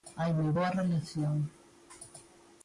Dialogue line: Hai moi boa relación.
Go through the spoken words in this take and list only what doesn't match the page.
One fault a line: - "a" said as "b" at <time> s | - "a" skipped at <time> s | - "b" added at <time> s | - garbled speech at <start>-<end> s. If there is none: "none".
none